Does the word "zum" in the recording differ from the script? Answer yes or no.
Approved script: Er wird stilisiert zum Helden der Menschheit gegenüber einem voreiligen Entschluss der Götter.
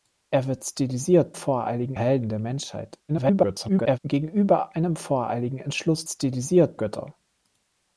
yes